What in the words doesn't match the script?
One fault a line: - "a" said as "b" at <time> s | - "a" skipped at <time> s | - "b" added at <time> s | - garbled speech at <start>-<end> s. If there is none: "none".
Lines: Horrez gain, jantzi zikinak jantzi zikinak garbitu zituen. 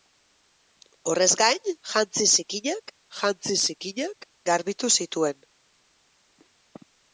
none